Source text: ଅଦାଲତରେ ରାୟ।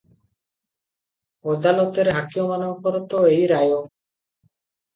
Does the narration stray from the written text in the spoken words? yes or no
yes